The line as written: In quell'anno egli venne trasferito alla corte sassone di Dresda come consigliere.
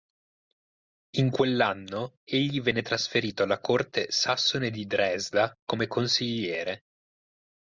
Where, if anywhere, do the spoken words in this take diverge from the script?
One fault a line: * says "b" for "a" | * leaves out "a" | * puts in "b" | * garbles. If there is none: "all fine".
all fine